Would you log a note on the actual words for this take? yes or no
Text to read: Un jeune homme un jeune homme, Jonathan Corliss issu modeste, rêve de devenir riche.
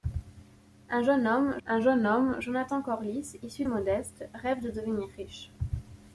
no